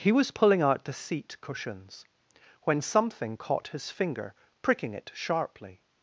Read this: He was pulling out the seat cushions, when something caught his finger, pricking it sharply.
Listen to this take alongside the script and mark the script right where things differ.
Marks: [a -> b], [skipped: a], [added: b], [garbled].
He was pulling out the seat cushions, when something caught his finger, pricking it sharply.